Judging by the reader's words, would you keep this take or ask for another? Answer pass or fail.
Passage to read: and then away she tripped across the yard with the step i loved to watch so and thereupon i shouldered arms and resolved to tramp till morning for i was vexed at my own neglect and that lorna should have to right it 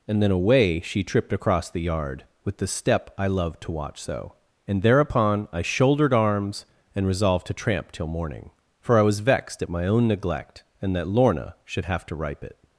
fail